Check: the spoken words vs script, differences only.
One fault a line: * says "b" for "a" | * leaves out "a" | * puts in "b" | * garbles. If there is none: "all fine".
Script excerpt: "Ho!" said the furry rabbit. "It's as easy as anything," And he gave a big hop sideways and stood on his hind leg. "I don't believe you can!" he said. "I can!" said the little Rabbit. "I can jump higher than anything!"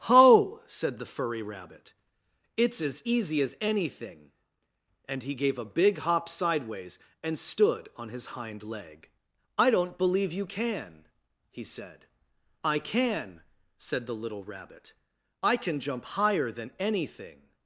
all fine